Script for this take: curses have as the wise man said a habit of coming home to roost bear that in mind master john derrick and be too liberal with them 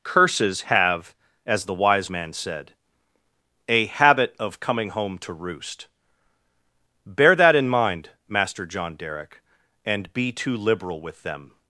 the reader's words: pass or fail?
pass